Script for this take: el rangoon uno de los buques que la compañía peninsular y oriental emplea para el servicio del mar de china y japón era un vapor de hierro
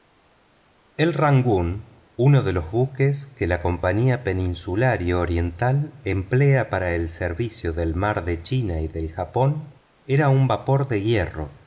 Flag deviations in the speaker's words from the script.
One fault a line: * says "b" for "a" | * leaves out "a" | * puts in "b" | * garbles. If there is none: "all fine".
* puts in "del"